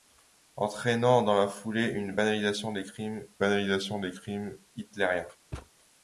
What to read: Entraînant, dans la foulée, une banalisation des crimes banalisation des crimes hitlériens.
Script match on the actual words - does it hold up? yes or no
yes